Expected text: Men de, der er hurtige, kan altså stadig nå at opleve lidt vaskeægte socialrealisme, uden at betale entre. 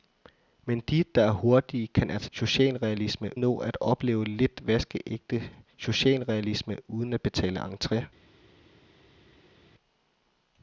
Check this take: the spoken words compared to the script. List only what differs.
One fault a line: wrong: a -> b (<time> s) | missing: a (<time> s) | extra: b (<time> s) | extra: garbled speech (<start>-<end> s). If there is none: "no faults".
wrong: stadig -> socialrealisme (2.3 s)